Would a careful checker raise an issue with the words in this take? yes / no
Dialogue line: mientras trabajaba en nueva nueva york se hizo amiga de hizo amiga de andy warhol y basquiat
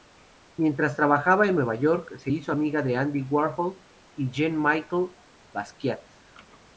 yes